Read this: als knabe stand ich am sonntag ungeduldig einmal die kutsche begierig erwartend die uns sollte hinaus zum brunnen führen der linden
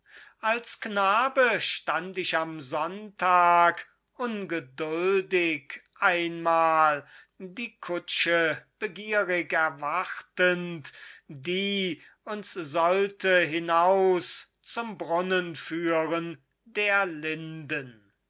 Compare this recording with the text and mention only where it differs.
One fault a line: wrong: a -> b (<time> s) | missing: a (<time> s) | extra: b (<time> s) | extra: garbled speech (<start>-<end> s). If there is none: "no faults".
no faults